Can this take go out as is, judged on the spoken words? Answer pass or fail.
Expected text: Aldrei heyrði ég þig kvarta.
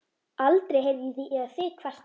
pass